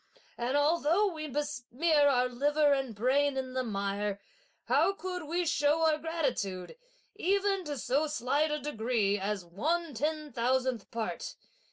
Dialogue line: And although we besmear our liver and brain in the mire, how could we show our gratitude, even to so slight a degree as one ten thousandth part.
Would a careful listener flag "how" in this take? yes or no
no